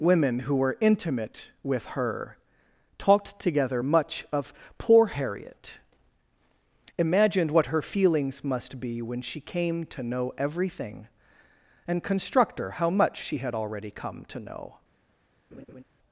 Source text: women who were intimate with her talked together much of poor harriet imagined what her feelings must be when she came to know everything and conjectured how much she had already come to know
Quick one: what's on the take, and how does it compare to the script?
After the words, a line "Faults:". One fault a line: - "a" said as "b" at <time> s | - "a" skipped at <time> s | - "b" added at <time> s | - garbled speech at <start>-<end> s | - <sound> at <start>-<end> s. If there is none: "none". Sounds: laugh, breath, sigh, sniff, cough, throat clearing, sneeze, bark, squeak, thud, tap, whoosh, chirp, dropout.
women who were intimate with her talked together much of poor harriet imagined what her feelings must be when she came to know everything and constructor how much she had already come to know
Faults:
- "conjectured" said as "constructor" at 12.0 s
- laugh at 15.5-15.8 s